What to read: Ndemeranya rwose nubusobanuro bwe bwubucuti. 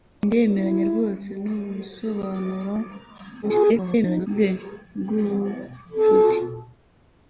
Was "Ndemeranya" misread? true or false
false